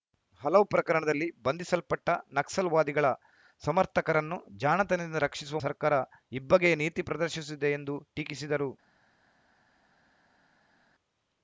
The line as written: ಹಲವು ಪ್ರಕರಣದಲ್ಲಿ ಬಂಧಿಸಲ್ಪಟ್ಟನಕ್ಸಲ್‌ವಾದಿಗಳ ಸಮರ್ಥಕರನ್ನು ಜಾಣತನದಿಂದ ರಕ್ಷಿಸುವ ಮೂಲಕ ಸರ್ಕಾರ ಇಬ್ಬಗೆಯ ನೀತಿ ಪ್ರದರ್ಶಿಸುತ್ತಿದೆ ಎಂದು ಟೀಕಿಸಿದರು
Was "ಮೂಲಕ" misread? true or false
true